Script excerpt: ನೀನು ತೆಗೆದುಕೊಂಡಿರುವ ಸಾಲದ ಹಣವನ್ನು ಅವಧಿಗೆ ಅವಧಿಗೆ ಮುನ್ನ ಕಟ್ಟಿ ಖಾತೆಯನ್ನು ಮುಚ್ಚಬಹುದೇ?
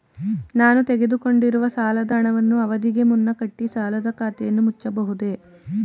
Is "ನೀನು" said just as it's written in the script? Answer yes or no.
no